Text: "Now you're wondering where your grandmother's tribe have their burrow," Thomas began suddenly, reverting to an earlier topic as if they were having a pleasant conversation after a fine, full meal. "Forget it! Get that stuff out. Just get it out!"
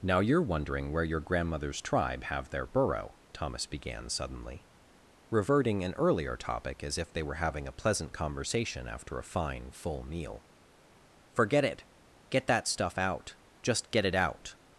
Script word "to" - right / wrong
wrong